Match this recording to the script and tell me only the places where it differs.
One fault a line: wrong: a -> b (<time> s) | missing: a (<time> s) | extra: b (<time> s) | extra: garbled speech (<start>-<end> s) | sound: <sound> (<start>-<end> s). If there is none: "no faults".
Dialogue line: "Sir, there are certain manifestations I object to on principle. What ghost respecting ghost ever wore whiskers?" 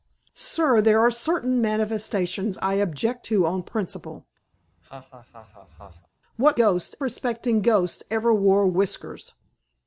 sound: laugh (4.5-6.1 s)